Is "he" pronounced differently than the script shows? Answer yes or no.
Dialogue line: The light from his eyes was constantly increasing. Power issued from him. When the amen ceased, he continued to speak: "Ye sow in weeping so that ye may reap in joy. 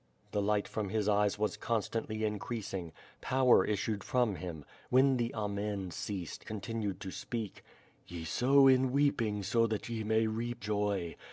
yes